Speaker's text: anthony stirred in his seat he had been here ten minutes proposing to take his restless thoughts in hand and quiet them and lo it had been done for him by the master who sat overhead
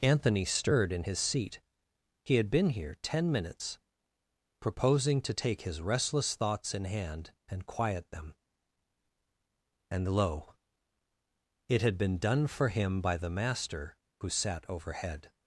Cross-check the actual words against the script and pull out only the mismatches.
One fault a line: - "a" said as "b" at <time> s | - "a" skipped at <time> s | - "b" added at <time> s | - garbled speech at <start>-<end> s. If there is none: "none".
none